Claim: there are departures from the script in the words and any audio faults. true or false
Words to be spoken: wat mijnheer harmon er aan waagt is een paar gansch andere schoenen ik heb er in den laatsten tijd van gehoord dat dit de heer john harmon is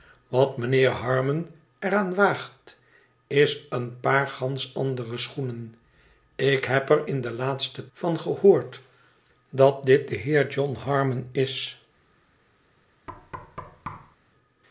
true